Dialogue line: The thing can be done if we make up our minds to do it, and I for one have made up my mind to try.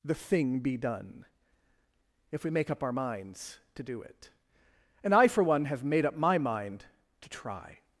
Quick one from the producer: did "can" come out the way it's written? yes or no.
no